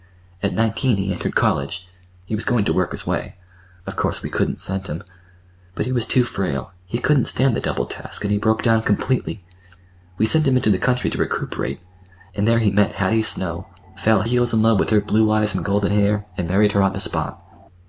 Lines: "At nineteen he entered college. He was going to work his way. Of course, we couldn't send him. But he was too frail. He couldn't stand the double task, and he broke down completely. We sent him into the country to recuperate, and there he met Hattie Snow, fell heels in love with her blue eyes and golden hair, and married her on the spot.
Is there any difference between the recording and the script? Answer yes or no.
no